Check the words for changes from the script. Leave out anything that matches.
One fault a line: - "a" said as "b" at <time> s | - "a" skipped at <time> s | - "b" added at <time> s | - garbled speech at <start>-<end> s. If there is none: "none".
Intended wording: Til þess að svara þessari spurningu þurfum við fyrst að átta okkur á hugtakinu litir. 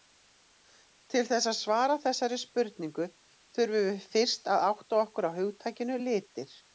none